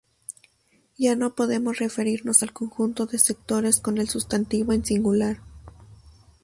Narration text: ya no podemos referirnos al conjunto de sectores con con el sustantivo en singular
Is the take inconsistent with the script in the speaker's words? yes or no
yes